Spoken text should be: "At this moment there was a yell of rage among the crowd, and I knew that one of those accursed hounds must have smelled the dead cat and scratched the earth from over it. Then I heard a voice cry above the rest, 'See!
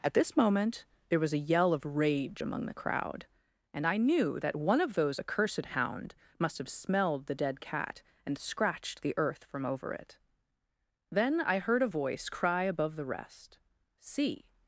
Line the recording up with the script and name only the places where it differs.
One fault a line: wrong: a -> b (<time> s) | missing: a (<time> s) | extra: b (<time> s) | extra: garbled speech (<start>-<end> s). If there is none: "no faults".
wrong: hounds -> hound (5.7 s)